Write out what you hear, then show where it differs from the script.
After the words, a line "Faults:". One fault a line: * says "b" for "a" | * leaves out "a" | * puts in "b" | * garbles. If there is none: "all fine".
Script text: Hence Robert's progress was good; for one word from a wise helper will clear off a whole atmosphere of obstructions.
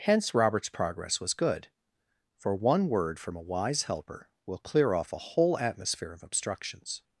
Hence Robert's progress was good; for one word from a wise helper will clear off a whole atmosphere of obstructions.
Faults:
all fine